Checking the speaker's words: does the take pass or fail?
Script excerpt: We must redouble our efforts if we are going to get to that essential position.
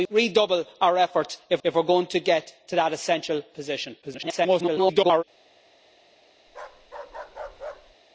fail